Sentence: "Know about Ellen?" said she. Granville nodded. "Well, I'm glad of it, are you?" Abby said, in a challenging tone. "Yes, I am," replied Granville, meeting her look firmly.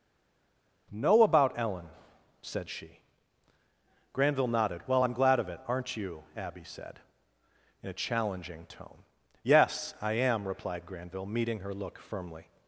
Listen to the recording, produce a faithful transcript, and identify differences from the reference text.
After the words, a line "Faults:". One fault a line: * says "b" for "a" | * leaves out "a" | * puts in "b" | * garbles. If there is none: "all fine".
"Know about Ellen?" said she. Granville nodded. "Well, I'm glad of it, aren't you?" Abby said, in a challenging tone. "Yes, I am," replied Granville, meeting her look firmly.
Faults:
* says "aren't" for "are"